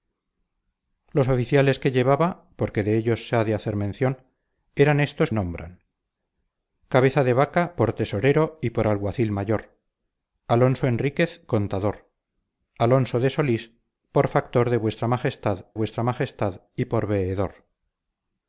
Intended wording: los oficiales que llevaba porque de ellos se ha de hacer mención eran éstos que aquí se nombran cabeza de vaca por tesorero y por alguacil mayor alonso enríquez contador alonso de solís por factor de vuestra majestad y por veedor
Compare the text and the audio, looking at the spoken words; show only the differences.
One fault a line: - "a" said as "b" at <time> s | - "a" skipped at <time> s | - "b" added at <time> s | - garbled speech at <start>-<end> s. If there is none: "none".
- "que aquí se" skipped at 5.3 s
- "vuestra majestad" added at 15.7 s